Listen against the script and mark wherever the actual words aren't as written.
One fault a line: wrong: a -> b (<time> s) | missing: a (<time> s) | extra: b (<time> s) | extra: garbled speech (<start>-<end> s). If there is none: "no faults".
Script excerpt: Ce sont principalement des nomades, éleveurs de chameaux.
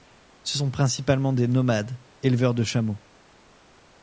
no faults